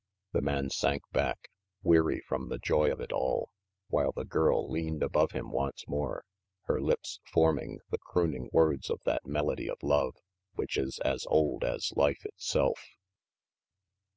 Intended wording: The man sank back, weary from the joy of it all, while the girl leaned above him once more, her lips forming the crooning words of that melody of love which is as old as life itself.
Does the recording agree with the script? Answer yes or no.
yes